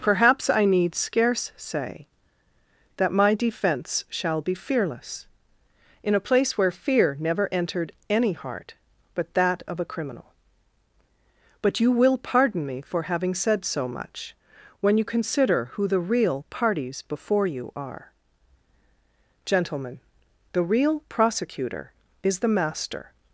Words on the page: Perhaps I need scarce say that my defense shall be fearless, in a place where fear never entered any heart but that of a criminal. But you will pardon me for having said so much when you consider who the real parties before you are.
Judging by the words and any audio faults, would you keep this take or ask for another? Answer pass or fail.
fail